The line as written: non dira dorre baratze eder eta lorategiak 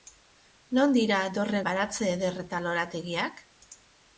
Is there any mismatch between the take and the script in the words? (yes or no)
no